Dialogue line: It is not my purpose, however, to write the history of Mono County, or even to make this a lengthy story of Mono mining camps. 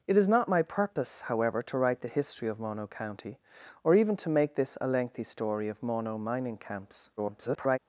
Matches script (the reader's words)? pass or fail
fail